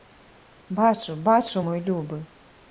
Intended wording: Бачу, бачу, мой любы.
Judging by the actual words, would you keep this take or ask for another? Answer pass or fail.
pass